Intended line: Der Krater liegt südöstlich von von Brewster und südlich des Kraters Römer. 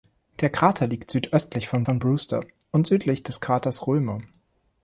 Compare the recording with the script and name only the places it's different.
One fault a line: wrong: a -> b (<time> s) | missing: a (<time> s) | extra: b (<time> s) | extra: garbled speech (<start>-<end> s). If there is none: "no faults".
no faults